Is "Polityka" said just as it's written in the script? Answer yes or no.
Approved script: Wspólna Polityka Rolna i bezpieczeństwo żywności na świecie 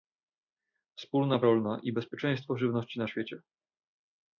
no